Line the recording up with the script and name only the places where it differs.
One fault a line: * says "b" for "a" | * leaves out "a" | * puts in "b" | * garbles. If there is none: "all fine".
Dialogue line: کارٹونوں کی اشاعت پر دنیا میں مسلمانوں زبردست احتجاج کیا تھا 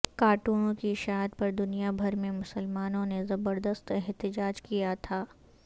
* puts in "بھر"
* puts in "نے"